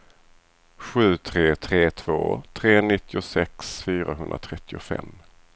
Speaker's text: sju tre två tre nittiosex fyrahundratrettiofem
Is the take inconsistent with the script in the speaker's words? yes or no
yes